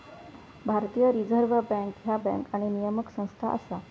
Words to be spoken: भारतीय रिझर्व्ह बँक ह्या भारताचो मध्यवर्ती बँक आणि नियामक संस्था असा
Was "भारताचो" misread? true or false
true